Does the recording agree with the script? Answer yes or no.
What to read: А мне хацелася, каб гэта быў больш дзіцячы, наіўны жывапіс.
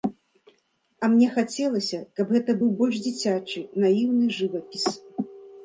yes